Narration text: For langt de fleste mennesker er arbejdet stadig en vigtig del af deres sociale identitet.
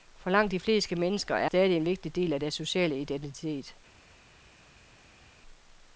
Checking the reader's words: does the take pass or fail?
fail